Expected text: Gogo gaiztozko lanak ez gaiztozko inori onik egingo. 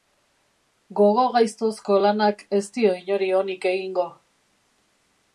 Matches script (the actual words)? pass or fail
fail